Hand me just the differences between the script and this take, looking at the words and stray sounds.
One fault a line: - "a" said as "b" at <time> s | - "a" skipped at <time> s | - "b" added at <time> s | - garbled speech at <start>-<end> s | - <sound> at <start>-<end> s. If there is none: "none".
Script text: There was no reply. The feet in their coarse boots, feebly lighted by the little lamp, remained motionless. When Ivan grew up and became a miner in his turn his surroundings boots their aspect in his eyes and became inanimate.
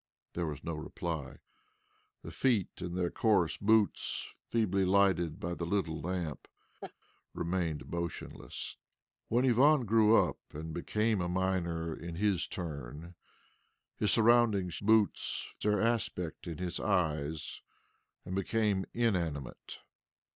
- laugh at 6.8-6.9 s